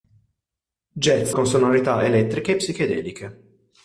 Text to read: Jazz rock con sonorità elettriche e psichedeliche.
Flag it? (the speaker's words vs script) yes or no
yes